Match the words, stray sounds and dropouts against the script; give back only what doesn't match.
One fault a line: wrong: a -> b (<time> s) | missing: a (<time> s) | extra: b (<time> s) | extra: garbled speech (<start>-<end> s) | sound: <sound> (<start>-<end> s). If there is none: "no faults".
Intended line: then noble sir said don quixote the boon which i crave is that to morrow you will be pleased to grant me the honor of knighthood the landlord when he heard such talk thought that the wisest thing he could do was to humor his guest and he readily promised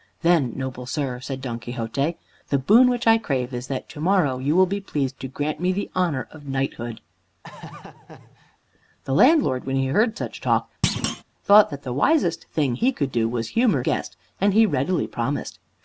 sound: laugh (7.4-8.6 s)
sound: thud (10.8-11.2 s)
missing: his (13.8 s)